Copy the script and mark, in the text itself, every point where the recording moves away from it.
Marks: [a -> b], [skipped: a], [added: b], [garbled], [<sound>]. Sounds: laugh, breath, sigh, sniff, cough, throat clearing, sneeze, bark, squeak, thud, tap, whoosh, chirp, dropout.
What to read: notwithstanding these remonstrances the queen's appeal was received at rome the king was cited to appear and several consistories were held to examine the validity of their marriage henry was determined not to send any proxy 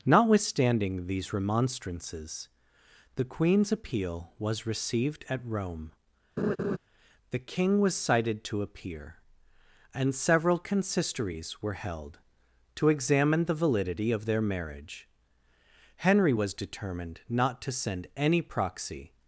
notwithstanding these remonstrances the queen's appeal was received at rome [laugh] the king was cited to appear and several consistories were held to examine the validity of their marriage henry was determined not to send any proxy